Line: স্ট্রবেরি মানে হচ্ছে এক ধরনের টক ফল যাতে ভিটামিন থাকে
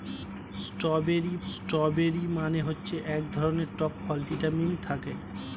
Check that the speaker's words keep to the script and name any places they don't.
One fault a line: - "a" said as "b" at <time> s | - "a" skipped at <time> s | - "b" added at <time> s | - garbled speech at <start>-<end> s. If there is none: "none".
- "স্ট্রবেরি" added at 1.5 s
- "যাতে" skipped at 4.2 s